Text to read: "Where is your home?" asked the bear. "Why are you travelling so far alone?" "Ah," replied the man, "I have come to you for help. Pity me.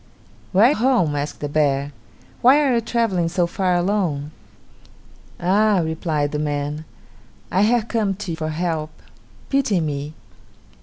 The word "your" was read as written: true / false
false